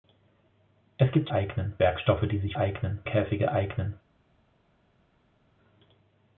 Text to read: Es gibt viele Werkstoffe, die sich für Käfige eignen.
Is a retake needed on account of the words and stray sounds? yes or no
yes